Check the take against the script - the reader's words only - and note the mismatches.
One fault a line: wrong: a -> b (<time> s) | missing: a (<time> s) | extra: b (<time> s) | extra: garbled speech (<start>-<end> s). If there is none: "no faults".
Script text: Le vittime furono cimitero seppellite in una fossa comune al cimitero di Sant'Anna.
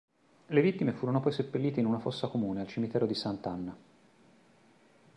wrong: cimitero -> poi (1.2 s)